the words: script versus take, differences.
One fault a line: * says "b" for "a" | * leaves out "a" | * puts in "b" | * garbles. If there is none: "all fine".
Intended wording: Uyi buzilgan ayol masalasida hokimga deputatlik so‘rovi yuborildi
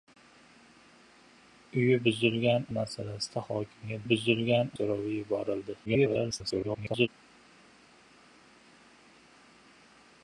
* leaves out "ayol"
* says "buzilgan" for "deputatlik"
* garbles